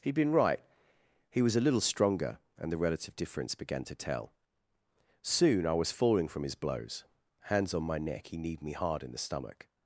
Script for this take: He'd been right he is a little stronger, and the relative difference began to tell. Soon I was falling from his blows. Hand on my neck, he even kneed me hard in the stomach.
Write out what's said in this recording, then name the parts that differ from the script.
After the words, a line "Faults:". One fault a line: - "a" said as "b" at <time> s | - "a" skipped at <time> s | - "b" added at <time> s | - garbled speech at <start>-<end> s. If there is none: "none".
He'd been right he was a little stronger, and the relative difference began to tell. Soon I was falling from his blows. Hands on my neck, he kneed me hard in the stomach.
Faults:
- "is" said as "was" at 1.4 s
- "Hand" said as "Hands" at 7.4 s
- "even" skipped at 8.4 s